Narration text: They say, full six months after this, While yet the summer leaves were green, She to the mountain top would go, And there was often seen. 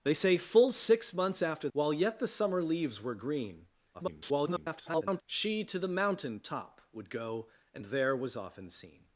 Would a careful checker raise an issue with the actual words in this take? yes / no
yes